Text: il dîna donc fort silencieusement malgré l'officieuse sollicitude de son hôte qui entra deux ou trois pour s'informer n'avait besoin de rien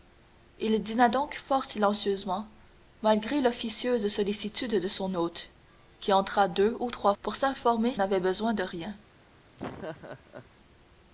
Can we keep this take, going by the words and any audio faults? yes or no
no